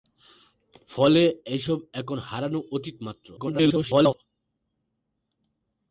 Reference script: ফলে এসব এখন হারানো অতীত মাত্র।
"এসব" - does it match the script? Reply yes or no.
yes